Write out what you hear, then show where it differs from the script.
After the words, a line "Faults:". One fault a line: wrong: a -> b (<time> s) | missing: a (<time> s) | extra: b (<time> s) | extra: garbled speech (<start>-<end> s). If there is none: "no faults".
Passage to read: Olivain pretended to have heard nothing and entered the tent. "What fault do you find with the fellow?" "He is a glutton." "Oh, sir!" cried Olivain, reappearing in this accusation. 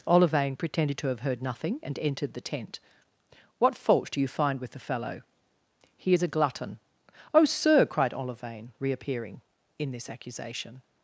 Olivain pretended to have heard nothing and entered the tent. "What fault do you find with the fellow?" "He is a glutton." "Oh, sir!" cried Olivain, reappearing in this accusation.
Faults:
no faults